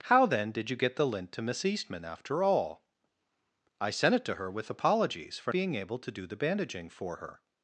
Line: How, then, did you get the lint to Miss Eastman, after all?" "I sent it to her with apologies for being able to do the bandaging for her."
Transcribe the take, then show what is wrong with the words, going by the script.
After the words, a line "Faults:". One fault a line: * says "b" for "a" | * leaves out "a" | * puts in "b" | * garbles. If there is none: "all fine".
How, then, did you get the lint to Miss Eastman, after all?" "I sent it to her with apologies for being able to do the bandaging for her."
Faults:
all fine